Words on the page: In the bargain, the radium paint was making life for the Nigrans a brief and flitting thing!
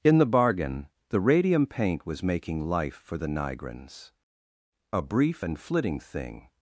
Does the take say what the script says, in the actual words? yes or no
yes